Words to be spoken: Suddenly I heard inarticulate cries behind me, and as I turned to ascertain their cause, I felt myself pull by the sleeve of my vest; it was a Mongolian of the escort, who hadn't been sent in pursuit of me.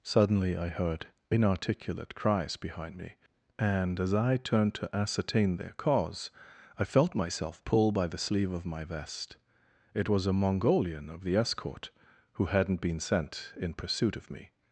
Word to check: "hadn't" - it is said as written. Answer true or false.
true